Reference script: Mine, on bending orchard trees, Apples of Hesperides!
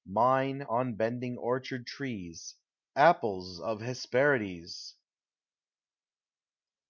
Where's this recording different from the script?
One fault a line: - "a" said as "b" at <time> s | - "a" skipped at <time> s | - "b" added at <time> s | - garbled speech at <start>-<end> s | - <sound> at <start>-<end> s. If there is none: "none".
none